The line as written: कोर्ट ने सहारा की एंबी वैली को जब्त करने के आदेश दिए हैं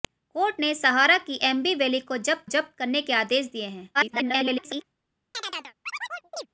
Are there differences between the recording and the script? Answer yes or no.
yes